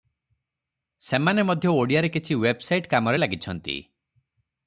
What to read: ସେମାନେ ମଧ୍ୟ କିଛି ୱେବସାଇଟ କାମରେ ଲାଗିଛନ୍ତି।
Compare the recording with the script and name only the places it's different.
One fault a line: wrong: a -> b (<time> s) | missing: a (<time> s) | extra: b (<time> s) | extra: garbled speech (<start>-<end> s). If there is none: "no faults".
extra: ଓଡ଼ିଆରେ (1.7 s)